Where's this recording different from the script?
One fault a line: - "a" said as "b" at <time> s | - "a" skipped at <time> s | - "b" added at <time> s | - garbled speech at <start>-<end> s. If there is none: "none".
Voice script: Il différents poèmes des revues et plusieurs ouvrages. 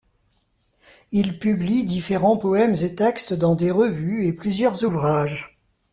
- "publie" added at 1.4 s
- "et textes dans" added at 2.8 s